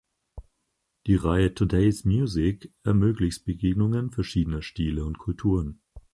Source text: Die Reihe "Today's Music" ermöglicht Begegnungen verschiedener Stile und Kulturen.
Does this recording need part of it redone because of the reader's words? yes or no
no